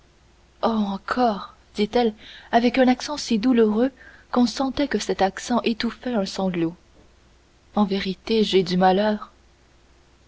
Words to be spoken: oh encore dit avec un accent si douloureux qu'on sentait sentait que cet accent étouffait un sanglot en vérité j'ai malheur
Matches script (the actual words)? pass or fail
fail